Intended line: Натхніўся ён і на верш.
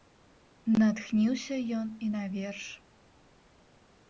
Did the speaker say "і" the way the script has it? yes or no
yes